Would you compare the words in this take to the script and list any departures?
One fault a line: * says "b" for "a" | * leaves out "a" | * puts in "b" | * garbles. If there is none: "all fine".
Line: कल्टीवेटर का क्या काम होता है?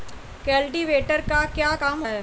* leaves out "होता"